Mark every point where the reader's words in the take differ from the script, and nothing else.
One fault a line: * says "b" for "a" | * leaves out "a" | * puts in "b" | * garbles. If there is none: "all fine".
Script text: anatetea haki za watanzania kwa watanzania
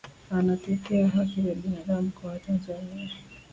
* says "binadamu" for "watanzania"